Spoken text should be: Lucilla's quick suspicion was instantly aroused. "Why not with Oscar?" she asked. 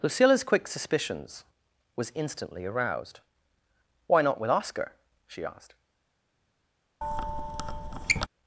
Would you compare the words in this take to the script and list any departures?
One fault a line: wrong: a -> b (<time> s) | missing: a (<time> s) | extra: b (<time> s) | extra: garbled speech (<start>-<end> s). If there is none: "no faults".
wrong: suspicion -> suspicions (0.7 s)